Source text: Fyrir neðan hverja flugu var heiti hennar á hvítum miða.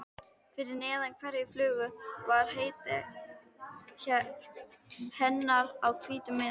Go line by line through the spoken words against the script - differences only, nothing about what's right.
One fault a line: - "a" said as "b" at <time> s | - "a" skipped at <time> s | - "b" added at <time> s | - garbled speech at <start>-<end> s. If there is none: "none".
none